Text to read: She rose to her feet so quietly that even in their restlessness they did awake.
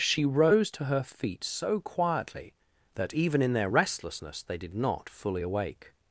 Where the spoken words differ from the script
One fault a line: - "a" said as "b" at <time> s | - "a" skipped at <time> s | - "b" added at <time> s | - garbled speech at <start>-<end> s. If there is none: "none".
- "not fully" added at 4.7 s